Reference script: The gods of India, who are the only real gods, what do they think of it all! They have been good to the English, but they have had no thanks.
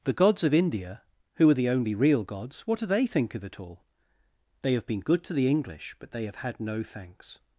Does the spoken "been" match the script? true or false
true